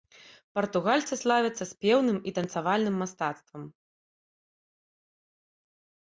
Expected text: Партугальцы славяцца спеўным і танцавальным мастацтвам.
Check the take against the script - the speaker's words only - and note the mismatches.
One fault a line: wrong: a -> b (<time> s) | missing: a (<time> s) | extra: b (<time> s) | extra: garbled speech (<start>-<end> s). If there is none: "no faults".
no faults